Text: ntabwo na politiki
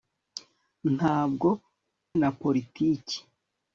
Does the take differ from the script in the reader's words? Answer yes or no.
no